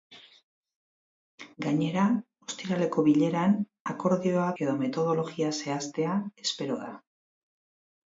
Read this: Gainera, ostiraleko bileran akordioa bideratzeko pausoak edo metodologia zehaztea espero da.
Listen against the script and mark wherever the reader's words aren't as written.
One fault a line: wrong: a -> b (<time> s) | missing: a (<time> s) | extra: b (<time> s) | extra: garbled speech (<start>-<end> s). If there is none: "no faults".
missing: bideratzeko pausoak (4.5 s)